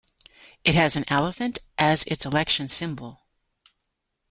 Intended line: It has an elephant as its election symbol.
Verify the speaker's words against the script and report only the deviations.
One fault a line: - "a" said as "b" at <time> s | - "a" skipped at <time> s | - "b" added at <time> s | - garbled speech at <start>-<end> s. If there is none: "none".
none